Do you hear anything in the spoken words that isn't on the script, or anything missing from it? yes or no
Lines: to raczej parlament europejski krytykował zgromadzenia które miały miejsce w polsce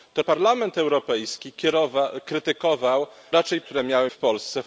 yes